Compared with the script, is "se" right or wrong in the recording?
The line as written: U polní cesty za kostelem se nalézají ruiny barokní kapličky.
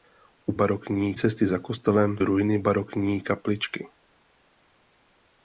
wrong